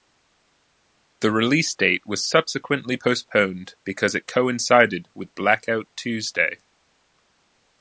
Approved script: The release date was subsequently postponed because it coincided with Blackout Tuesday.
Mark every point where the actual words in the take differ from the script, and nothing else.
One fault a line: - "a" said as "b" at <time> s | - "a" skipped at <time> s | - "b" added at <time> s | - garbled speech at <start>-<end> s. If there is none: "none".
none